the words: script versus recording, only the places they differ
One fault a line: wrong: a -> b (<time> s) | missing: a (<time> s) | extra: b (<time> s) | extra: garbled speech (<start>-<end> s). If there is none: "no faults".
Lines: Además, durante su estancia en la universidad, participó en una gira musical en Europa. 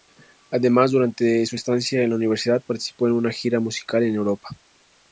no faults